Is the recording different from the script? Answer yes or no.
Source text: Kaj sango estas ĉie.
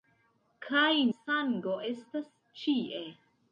no